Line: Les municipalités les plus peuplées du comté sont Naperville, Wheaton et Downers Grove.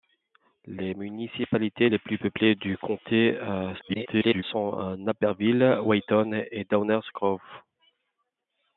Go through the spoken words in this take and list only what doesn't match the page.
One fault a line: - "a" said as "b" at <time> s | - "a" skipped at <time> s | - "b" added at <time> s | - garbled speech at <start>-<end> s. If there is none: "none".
- garbled speech at 3.8-4.4 s